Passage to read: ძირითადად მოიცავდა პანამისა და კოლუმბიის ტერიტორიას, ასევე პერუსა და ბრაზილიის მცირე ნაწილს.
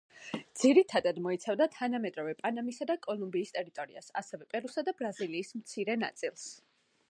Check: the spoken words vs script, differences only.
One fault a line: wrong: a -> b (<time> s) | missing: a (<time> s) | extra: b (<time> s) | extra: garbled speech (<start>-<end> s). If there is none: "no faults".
extra: თანამედროვე (1.8 s)